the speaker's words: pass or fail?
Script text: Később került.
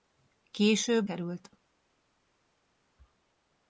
pass